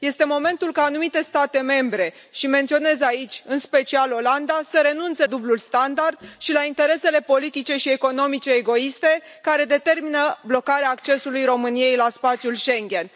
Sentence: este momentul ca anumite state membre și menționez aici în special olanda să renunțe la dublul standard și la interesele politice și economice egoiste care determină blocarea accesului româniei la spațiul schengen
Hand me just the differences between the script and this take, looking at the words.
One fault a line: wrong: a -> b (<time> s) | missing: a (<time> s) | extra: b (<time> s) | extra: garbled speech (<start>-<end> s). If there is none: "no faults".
missing: la (5.2 s)